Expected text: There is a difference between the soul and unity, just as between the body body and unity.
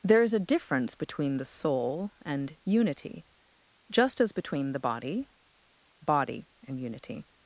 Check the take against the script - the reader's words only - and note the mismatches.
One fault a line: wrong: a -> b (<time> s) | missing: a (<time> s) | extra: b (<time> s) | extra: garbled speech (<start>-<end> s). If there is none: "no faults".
no faults